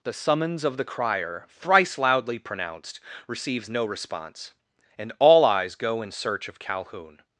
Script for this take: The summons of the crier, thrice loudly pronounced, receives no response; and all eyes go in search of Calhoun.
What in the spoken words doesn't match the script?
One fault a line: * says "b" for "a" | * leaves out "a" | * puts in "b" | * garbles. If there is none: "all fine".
all fine